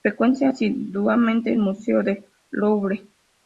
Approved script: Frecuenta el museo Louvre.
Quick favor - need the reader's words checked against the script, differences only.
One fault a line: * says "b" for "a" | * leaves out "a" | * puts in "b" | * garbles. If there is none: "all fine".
* puts in "asiduamente"
* puts in "del"